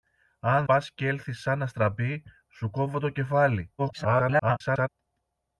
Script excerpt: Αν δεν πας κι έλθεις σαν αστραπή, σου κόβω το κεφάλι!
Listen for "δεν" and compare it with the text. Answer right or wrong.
wrong